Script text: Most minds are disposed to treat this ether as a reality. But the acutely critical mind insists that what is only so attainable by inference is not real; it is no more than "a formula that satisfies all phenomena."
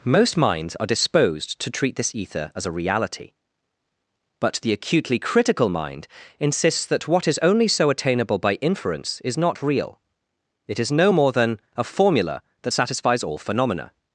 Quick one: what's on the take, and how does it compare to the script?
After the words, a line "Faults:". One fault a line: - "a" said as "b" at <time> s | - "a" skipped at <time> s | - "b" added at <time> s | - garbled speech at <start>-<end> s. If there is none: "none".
Most minds are disposed to treat this ether as a reality. But the acutely critical mind insists that what is only so attainable by inference is not real; it is no more than "a formula that satisfies all phenomena."
Faults:
none